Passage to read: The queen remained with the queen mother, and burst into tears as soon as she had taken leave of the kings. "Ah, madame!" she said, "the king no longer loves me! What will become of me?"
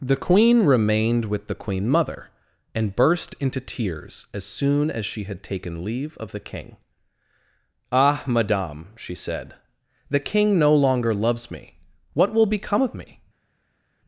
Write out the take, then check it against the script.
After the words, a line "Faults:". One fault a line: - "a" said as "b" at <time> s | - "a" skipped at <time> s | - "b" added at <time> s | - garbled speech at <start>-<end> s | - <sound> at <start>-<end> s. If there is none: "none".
The queen remained with the queen mother, and burst into tears as soon as she had taken leave of the king. "Ah, madame!" she said, "the king no longer loves me! What will become of me?"
Faults:
- "kings" said as "king" at 6.4 s